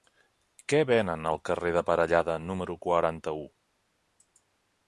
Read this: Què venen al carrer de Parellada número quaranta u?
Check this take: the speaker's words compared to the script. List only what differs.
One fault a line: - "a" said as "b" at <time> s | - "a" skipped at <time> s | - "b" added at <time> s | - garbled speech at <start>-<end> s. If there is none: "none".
none